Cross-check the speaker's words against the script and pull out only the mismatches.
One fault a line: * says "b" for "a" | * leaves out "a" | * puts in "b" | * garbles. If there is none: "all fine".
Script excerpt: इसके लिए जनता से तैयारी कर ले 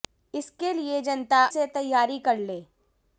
all fine